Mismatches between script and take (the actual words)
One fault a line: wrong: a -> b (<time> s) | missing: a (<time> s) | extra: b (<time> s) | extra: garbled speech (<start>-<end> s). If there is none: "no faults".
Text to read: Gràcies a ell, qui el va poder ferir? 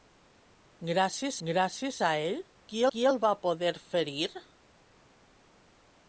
extra: gràcies (1.5 s)
extra: qui (2.9 s)